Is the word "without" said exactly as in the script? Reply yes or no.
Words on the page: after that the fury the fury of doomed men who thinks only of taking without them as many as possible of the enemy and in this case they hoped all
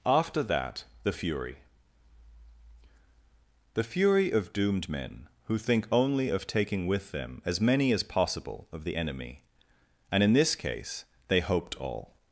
no